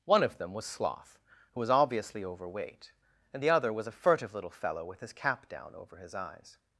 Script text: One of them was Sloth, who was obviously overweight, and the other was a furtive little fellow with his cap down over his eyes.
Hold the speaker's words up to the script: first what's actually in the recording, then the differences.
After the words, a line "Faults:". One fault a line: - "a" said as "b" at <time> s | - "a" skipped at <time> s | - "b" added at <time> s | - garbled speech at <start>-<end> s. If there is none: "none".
One of them was Sloth, who was obviously overweight, and the other was a furtive little fellow with his cap down over his eyes.
Faults:
none